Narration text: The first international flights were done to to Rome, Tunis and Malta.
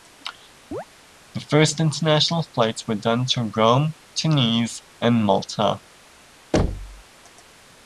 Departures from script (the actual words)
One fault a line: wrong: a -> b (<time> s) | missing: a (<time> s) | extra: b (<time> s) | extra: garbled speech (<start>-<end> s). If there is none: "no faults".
missing: to (3.5 s)